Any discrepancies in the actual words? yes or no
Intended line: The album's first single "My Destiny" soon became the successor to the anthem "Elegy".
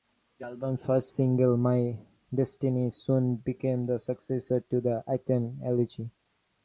no